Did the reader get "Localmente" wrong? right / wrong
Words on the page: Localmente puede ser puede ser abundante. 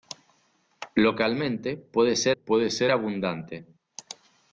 right